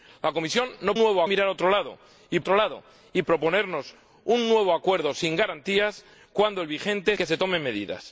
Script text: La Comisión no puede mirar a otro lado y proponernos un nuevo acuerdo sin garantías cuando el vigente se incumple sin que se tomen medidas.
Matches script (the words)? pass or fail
fail